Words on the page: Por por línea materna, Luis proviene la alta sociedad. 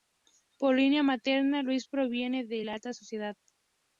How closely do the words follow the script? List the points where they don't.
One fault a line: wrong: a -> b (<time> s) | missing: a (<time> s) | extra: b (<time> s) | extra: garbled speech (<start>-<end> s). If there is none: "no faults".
missing: por (0.8 s)
extra: de (2.5 s)